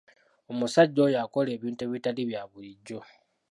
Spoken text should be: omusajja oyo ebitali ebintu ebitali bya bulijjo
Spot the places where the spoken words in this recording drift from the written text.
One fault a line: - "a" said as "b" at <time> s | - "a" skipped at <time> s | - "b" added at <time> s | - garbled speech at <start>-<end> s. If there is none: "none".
- "ebitali" said as "akola" at 1.2 s